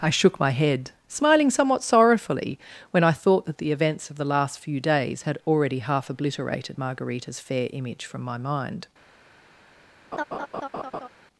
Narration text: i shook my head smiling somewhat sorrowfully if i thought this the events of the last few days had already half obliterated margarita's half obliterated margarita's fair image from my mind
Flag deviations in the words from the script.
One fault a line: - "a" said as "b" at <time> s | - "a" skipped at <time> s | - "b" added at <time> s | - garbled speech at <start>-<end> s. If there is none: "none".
- "if" said as "when" at 2.9 s
- "this" said as "that" at 3.5 s
- "half obliterated margarita's" skipped at 7.4 s